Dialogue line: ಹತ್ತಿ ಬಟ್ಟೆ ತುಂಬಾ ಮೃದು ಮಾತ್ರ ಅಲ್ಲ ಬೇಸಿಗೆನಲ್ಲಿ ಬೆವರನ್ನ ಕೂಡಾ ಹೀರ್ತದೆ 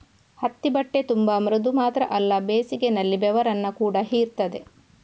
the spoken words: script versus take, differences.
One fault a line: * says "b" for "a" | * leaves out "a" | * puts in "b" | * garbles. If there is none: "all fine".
all fine